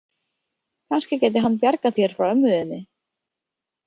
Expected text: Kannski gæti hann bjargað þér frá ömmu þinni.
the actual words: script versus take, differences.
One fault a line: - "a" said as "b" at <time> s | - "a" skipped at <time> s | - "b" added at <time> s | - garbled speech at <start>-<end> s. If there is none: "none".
none